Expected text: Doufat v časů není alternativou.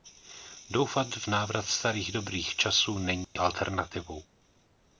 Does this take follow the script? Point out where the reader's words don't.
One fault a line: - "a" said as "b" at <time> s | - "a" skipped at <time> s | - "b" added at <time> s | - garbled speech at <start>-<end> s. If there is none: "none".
- "návrat starých dobrých" added at 1.3 s